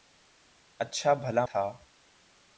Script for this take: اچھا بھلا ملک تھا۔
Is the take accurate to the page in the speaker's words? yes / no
no